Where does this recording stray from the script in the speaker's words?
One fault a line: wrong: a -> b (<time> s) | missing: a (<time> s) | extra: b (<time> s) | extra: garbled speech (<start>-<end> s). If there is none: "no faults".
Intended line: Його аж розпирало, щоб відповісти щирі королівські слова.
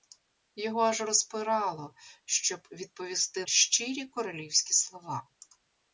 no faults